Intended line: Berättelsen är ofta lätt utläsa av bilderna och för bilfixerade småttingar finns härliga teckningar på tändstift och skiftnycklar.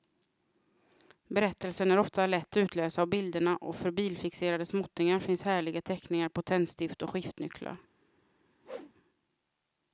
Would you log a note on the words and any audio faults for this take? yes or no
yes